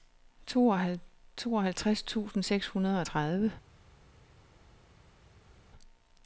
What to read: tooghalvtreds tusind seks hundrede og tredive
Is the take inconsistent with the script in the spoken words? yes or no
no